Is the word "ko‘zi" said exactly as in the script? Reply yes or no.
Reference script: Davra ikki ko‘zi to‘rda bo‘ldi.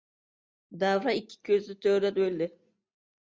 yes